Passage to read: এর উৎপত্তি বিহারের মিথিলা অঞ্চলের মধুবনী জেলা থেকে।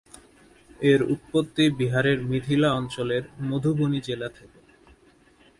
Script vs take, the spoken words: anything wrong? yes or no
no